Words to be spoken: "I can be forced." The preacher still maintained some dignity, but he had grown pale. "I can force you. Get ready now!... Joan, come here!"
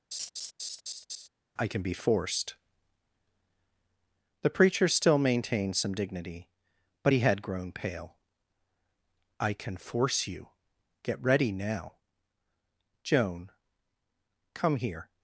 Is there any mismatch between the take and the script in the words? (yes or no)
no